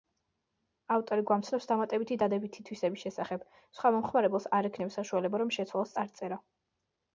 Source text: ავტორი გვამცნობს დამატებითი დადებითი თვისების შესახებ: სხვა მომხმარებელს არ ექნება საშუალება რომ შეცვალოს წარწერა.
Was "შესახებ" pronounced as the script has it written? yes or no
yes